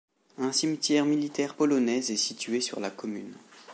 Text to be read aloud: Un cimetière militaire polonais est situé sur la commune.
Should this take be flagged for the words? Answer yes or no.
no